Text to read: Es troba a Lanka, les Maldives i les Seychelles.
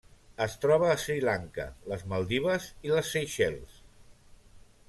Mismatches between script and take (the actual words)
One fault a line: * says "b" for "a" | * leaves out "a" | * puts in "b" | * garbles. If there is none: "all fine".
* puts in "Sri"